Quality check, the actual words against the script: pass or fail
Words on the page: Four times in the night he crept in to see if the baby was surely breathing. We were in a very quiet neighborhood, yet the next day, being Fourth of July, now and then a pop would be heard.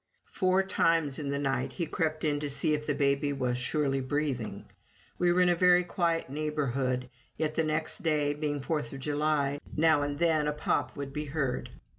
pass